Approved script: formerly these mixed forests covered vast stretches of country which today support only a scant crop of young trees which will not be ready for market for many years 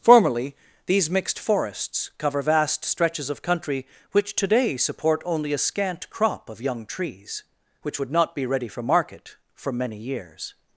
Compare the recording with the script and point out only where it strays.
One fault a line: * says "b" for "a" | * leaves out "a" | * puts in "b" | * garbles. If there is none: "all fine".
* says "cover" for "covered"
* says "would" for "will"